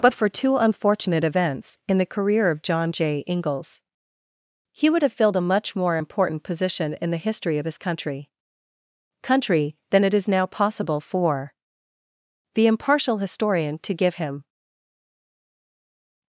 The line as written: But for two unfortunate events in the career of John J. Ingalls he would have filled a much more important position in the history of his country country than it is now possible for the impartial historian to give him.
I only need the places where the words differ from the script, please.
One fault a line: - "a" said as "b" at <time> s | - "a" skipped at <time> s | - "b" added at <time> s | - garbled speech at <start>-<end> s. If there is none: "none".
none